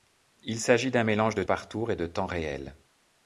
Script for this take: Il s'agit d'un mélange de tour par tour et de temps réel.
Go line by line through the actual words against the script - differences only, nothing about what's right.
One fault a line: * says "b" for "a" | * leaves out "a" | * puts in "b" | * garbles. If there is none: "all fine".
* leaves out "tour"